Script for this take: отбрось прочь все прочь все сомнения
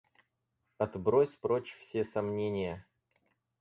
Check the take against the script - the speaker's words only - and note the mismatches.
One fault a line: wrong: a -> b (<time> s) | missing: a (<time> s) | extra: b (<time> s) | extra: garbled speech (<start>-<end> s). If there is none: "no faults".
missing: прочь все (2.0 s)